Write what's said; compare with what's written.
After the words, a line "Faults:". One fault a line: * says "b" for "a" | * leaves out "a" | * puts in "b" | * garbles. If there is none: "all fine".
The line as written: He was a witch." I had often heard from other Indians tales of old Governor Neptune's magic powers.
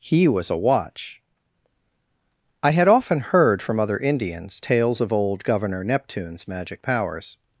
He was a watch." I had often heard from other Indians tales of old Governor Neptune's magic powers.
Faults:
* says "watch" for "witch"